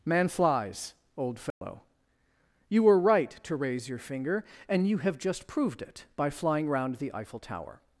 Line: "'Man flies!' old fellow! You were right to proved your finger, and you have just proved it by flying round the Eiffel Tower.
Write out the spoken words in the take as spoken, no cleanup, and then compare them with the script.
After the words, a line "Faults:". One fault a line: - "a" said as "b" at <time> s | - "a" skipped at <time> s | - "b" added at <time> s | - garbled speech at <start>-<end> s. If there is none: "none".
"'Man flies!' old fellow! You were right to raise your finger, and you have just proved it by flying round the Eiffel Tower.
Faults:
- "proved" said as "raise" at 3.5 s